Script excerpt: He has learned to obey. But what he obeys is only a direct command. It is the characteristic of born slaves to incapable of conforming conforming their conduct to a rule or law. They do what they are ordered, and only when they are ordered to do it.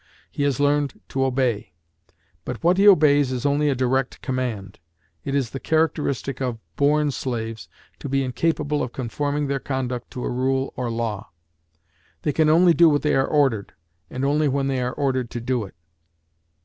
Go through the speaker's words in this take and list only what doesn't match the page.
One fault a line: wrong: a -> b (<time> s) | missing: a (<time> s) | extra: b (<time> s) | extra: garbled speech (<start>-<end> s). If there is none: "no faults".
extra: be (8.1 s)
missing: conforming (9.4 s)
extra: can only (12.3 s)